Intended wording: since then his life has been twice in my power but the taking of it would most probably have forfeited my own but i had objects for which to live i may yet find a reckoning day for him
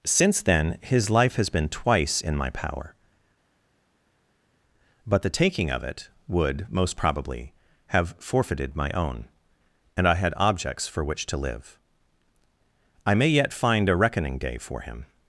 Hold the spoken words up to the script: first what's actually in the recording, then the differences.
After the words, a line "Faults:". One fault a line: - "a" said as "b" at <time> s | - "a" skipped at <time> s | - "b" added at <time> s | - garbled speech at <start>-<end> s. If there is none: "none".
since then his life has been twice in my power but the taking of it would most probably have forfeited my own and i had objects for which to live i may yet find a reckoning day for him
Faults:
- "but" said as "and" at 10.0 s